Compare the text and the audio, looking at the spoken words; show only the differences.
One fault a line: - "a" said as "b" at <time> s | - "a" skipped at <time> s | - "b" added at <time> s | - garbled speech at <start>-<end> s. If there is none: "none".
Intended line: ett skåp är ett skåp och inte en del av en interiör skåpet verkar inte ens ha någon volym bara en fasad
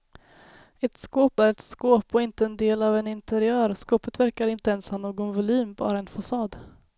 none